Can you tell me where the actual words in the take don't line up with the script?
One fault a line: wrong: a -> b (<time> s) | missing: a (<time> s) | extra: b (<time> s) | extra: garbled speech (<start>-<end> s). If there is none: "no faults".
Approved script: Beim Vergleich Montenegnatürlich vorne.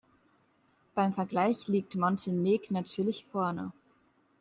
extra: liegt (1.7 s)